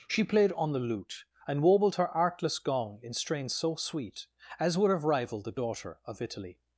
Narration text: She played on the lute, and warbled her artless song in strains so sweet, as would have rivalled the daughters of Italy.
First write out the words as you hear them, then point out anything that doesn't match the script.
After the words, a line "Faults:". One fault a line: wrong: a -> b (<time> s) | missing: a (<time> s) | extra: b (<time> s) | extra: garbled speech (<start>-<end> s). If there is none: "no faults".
She played on the lute, and warbled her artless gong in strains so sweet, as would have rivalled the daughter of Italy.
Faults:
wrong: song -> gong (2.6 s)
wrong: daughters -> daughter (5.5 s)